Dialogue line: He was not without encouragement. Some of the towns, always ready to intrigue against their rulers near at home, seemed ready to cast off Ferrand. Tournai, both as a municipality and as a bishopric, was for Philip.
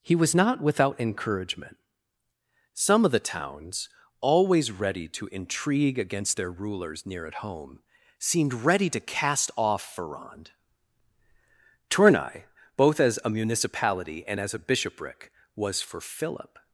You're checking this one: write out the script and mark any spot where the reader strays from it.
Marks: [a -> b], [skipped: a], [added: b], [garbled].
He was not without encouragement. Some of the towns, always ready to intrigue against their rulers near at home, seemed ready to cast off Ferrand. Tournai, both as a municipality and as a bishopric, was for Philip.